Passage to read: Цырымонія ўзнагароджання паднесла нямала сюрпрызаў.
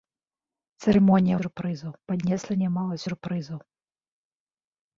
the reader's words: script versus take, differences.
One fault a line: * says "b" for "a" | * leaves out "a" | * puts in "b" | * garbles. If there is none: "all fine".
* says "сюрпрызаў" for "ўзнагароджання"